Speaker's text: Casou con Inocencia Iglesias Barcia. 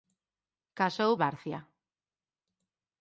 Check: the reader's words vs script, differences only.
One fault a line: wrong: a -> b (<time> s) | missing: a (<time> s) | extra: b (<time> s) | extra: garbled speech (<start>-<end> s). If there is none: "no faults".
missing: con Inocencia Iglesias (1.1 s)